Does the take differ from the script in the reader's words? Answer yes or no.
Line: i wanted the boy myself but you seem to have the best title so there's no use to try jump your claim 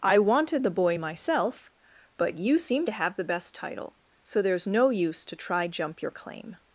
no